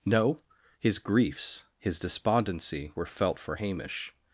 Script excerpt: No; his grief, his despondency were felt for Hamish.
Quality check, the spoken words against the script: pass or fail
fail